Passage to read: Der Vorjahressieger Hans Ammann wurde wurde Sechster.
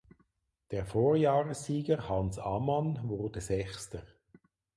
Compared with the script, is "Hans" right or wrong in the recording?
right